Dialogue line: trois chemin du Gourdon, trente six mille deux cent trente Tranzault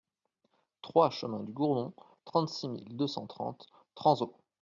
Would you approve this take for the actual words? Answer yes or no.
yes